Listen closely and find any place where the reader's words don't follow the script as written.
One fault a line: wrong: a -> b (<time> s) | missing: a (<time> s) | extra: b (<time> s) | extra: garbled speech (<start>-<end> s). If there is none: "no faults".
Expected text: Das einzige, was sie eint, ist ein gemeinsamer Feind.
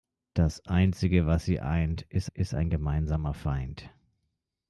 extra: ist (2.3 s)